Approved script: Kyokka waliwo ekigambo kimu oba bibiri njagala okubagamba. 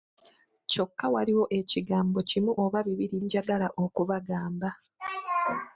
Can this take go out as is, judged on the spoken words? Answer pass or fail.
pass